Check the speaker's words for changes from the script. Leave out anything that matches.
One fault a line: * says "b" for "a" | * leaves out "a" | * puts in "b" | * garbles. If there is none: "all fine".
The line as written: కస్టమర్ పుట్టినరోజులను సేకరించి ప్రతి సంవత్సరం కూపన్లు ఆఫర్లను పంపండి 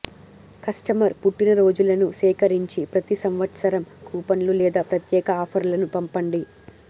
* puts in "లేదా ప్రత్యేక"